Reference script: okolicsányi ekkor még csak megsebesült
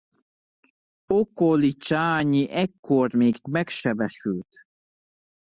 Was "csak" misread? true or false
true